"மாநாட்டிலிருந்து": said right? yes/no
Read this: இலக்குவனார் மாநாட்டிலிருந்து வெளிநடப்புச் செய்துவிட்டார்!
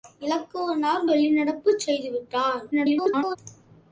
no